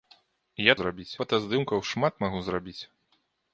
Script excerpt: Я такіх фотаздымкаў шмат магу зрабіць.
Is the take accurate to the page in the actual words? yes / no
no